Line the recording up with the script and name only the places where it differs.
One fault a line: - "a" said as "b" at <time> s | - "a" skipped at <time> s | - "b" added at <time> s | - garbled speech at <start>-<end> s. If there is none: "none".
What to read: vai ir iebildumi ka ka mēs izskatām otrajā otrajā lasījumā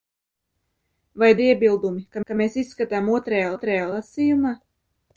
none